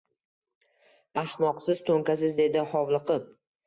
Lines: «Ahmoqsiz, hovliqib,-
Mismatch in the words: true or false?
true